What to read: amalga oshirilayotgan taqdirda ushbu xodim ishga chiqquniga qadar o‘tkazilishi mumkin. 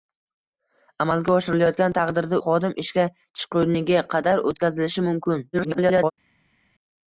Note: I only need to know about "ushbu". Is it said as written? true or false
false